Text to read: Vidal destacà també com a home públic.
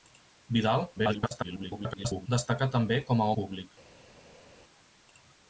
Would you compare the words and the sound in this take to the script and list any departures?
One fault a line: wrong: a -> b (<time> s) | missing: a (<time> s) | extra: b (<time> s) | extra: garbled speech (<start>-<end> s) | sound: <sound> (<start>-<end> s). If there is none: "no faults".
extra: garbled speech (1.0-2.3 s)
missing: home (3.3 s)